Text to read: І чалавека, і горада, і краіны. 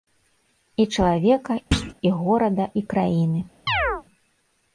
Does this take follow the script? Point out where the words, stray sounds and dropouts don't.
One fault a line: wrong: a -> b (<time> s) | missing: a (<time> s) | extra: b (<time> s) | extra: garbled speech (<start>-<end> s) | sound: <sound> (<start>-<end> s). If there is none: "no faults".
sound: thud (1.7-1.9 s)
sound: chirp (3.7-4.0 s)